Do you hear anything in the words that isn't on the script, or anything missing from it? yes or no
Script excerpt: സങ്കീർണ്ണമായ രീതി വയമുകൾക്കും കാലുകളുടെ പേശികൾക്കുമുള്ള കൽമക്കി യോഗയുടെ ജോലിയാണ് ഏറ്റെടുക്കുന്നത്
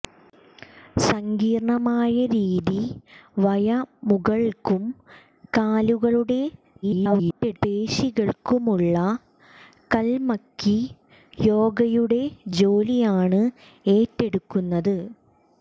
yes